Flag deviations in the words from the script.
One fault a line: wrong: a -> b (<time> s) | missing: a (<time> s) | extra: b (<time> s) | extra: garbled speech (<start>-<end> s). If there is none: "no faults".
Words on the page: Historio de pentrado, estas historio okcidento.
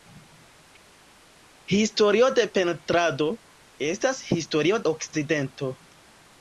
no faults